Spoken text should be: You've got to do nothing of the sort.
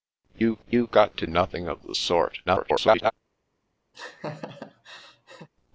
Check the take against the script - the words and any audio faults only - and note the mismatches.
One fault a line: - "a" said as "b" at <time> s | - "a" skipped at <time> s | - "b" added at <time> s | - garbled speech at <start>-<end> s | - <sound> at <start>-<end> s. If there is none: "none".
- "you've" added at 0.7 s
- "do" skipped at 1.3 s
- garbled speech at 2.5-3.1 s
- laugh at 3.9-5.5 s